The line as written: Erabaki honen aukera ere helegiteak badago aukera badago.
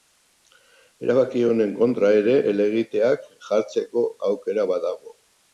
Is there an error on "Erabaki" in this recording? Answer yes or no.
no